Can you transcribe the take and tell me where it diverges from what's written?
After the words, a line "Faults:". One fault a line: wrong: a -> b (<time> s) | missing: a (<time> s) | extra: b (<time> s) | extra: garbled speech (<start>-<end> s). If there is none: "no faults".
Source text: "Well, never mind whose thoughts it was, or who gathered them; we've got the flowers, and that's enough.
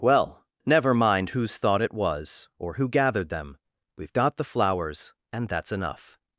"Well, never mind whose thought it was, or who gathered them; we've got the flowers, and that's enough.
Faults:
wrong: thoughts -> thought (1.6 s)